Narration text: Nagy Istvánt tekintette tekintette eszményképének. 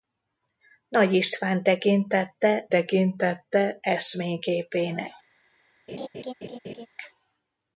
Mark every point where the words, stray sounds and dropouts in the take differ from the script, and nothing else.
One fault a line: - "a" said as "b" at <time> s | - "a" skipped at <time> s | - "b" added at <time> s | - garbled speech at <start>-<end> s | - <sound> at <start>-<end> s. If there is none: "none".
- laugh at 5.9-6.9 s